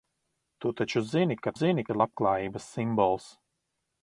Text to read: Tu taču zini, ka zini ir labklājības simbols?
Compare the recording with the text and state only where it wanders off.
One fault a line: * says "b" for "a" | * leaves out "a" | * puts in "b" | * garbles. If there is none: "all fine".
all fine